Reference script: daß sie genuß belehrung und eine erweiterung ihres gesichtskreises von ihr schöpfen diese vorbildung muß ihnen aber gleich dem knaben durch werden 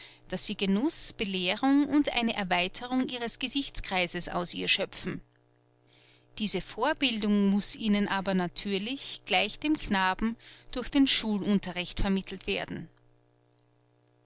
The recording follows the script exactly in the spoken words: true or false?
false